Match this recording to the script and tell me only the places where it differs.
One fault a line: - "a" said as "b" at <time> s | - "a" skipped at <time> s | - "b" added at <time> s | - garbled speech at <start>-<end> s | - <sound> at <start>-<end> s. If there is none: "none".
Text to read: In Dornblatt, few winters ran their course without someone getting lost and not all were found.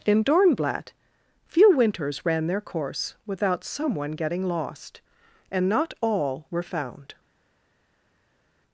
none